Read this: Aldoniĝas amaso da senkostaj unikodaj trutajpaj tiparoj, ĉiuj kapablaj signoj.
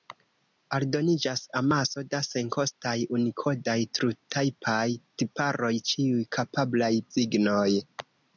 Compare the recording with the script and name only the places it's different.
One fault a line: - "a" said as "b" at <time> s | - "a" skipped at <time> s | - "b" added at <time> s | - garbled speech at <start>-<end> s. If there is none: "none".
none